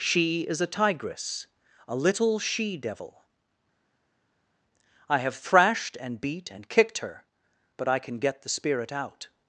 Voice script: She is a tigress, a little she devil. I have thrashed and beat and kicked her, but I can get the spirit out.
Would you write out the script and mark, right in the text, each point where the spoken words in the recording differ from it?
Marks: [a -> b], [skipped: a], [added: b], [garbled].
She is a tigress, a little she devil. I have thrashed and beat and kicked her, but I can get the spirit out.